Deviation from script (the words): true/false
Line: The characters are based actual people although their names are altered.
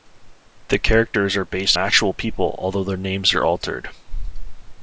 false